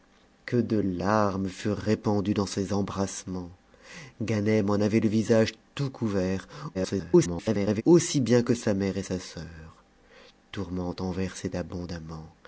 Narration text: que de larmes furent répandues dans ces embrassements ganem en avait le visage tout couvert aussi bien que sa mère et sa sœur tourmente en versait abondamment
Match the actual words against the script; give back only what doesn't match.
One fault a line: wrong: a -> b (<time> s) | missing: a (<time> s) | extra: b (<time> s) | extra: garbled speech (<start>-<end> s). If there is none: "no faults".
extra: garbled speech (6.7-7.8 s)